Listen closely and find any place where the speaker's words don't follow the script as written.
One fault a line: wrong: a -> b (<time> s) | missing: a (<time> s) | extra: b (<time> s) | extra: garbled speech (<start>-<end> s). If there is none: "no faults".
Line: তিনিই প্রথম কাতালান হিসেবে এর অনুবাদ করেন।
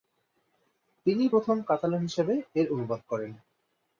no faults